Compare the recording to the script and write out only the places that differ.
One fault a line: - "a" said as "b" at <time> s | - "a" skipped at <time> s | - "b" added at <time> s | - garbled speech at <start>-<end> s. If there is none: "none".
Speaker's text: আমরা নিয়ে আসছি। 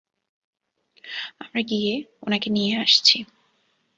- "গিয়ে ওনাকে" added at 1.7 s